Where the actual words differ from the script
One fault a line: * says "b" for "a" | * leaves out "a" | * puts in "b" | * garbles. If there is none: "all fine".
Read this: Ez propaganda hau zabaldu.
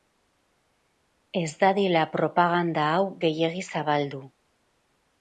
* puts in "dadila"
* puts in "gehiegi"